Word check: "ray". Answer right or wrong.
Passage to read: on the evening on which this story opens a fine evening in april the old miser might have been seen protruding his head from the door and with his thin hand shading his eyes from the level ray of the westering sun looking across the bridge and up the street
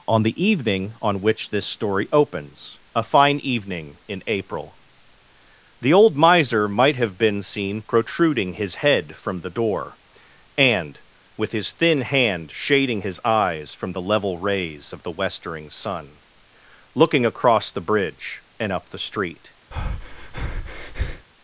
wrong